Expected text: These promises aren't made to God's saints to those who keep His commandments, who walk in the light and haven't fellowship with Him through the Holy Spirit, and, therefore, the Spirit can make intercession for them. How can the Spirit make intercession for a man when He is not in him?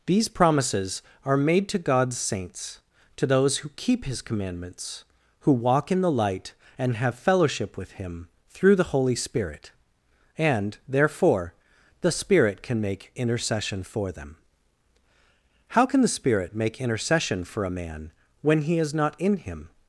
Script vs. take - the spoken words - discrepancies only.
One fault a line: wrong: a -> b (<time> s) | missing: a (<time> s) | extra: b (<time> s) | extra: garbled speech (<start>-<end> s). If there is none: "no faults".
wrong: aren't -> are (1.2 s)
wrong: haven't -> have (7.0 s)